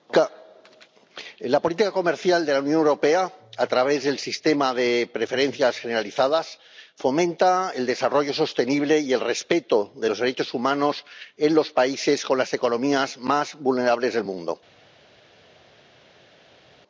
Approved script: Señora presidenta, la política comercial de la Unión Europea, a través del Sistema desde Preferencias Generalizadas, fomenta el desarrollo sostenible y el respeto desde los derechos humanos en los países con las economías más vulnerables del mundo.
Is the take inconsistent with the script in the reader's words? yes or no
yes